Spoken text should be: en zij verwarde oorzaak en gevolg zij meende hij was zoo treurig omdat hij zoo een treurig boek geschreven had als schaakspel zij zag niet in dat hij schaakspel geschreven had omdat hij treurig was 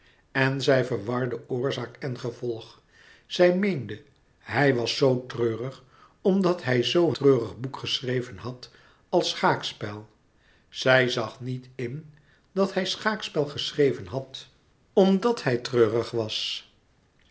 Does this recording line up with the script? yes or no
no